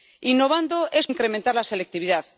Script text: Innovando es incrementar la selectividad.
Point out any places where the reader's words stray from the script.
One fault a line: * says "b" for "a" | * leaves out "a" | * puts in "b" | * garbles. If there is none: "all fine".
all fine